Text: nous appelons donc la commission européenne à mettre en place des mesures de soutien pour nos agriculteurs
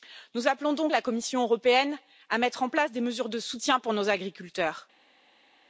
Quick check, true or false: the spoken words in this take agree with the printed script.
true